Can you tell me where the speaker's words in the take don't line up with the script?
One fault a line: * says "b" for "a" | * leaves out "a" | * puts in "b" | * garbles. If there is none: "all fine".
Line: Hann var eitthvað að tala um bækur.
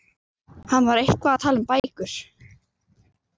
all fine